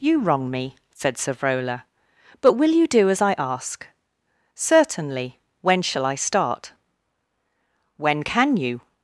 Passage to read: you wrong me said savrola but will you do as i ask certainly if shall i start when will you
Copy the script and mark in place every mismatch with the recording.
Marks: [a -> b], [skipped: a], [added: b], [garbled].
you wrong me said savrola but will you do as i ask certainly [if -> when] shall i start when [will -> can] you